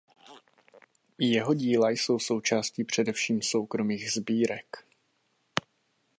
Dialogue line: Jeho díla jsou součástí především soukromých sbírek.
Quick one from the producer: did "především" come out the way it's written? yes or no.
yes